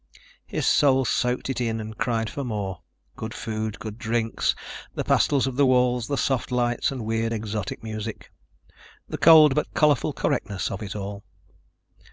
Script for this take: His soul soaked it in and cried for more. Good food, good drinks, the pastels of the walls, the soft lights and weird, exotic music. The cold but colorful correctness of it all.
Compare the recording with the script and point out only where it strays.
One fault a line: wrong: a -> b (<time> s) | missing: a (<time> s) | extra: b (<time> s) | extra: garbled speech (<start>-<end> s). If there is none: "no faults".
no faults